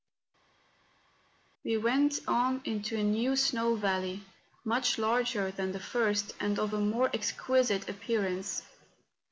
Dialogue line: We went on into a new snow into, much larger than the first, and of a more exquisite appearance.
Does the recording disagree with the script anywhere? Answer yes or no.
yes